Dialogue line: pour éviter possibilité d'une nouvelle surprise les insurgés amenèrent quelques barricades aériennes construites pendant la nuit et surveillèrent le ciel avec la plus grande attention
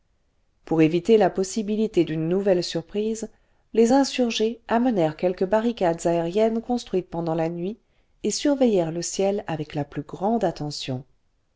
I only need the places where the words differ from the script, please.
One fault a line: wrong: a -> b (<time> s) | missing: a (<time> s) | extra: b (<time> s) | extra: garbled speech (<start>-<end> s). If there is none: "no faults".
extra: la (1.1 s)